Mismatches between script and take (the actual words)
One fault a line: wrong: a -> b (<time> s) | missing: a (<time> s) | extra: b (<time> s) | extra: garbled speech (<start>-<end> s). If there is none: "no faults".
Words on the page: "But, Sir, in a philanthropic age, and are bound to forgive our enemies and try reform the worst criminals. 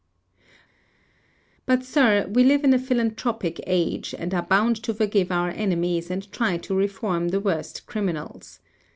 extra: we live (2.3 s)
extra: to (6.6 s)